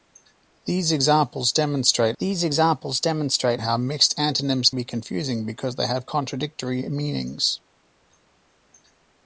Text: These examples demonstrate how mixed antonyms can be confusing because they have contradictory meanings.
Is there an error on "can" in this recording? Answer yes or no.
yes